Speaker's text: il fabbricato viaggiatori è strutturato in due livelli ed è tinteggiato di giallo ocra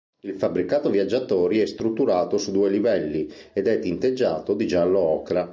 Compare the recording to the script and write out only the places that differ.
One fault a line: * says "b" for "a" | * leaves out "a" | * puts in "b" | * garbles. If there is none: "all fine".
* says "su" for "in"